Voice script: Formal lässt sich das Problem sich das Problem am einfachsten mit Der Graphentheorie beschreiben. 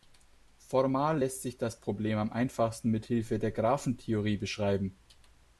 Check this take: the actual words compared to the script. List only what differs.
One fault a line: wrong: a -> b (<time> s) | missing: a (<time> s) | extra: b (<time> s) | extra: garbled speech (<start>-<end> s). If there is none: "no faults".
missing: sich das Problem (2.2 s)
extra: Hilfe (3.1 s)